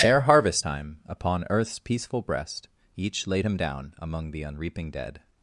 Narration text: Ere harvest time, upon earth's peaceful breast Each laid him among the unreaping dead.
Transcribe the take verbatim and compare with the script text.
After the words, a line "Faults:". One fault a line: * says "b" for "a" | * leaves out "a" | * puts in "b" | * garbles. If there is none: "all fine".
Ere harvest time, upon earth's peaceful breast Each laid him down among the unreaping dead.
Faults:
* puts in "down"